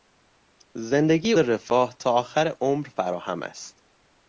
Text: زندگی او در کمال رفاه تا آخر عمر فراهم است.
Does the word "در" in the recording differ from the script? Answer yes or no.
yes